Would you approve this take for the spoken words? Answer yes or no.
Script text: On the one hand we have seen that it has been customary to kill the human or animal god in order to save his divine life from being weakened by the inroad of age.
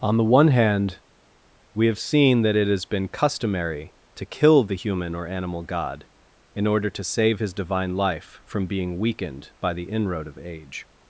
yes